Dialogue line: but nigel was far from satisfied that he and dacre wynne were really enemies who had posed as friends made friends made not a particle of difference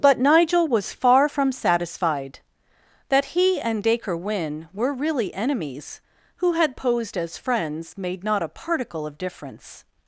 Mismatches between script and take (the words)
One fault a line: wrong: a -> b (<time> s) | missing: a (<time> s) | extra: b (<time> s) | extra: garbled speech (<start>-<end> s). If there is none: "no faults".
missing: friends made (8.2 s)